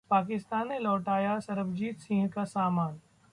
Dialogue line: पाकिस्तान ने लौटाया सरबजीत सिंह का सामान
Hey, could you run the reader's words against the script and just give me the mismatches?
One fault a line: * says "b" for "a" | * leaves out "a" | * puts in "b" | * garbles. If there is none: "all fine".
all fine